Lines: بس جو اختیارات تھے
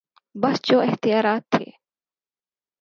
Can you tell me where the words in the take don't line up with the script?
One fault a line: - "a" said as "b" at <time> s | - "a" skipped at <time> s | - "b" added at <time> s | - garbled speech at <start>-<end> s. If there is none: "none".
none